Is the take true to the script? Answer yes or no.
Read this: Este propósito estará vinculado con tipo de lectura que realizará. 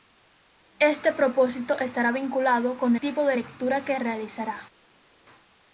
yes